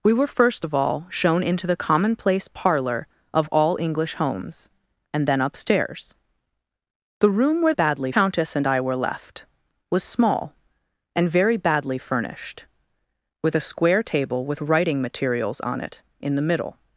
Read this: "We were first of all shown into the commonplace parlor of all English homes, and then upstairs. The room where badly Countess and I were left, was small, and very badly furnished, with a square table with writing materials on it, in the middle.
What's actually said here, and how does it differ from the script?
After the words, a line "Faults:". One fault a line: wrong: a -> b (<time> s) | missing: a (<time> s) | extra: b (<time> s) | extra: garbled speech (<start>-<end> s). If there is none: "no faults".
"We were first of all shown into the commonplace parlor of all English homes, and then upstairs. The room where badly Countess and I were left, was small, and very badly furnished, with a square table with writing materials on it, in the middle.
Faults:
no faults